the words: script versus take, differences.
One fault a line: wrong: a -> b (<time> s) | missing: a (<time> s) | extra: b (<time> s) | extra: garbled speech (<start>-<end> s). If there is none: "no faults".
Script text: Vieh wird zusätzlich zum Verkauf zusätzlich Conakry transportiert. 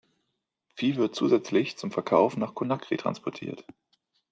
wrong: zusätzlich -> nach (2.4 s)